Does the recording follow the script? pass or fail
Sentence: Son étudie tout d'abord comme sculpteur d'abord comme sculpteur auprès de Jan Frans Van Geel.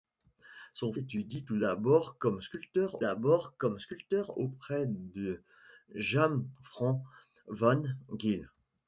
pass